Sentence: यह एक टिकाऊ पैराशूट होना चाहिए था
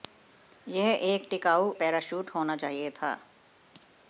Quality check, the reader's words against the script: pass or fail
pass